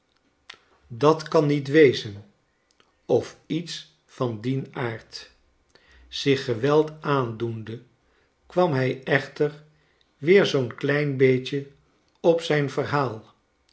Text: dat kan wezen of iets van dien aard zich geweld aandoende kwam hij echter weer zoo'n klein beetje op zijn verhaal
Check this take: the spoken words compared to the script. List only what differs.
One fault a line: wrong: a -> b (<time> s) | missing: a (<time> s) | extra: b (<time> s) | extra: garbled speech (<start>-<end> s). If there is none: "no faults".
extra: niet (1.4 s)